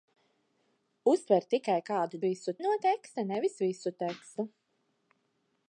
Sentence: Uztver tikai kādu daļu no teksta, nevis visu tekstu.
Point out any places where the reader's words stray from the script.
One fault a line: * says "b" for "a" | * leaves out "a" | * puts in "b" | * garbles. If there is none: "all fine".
* says "visu" for "daļu"